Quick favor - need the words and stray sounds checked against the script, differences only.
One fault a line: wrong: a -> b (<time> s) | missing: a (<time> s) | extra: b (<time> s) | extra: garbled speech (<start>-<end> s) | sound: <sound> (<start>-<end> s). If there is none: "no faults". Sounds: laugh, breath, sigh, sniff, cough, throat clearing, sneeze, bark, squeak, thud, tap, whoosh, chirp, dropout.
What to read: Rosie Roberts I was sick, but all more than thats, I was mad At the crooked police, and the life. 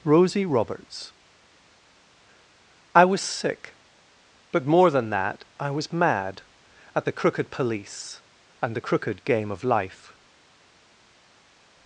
missing: all (4.7 s)
wrong: thats -> that (5.1 s)
extra: crooked game of (8.8 s)